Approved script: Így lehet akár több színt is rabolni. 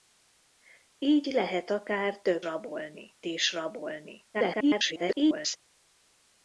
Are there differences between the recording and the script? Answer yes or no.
yes